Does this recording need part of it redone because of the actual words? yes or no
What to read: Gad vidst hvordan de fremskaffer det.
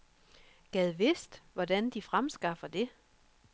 no